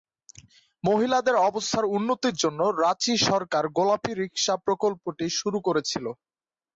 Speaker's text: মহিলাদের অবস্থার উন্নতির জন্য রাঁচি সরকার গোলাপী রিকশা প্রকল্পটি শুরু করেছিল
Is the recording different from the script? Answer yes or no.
no